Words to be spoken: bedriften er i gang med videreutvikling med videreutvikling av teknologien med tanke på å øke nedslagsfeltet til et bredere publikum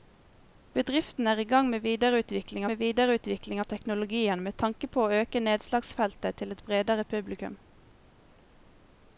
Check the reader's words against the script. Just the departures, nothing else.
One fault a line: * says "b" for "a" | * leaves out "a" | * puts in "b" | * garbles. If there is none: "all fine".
all fine